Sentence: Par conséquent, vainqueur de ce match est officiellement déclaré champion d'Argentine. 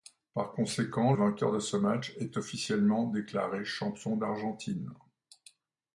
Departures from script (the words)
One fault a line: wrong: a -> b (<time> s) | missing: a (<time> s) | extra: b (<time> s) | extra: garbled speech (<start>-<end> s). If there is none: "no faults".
no faults